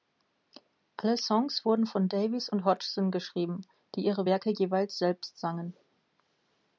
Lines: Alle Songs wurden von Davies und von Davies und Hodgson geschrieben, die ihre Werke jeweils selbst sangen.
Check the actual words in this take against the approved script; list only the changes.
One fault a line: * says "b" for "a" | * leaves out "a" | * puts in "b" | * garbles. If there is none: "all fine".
* leaves out "von Davies und"